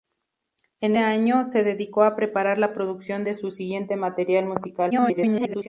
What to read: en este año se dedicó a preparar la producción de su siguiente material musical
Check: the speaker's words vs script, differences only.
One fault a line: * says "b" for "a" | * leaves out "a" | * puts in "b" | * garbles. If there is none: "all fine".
* leaves out "este"
* garbles